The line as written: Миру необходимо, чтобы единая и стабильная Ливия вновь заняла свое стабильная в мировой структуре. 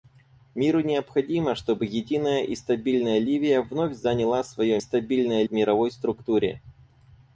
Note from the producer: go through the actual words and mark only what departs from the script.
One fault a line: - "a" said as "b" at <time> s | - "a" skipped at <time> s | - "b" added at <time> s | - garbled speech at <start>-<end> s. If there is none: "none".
none